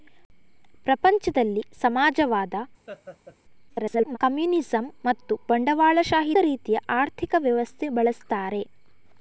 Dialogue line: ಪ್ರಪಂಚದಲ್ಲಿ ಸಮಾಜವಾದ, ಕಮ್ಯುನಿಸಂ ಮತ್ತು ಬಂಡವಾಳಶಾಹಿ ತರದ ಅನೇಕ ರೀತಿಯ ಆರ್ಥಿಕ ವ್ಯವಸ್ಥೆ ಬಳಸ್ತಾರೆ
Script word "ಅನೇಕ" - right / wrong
wrong